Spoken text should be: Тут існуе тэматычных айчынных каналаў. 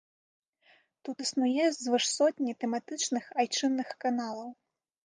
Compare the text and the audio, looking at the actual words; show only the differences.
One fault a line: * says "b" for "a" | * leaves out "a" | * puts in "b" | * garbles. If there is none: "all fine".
* puts in "звыш сотні"